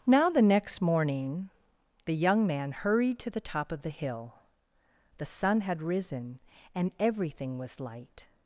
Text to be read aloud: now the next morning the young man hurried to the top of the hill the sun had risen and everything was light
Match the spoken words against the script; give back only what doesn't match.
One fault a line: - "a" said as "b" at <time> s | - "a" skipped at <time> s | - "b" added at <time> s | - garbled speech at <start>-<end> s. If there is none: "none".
none